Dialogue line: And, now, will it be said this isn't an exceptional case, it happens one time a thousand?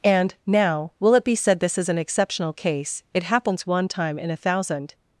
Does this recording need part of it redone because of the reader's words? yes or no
yes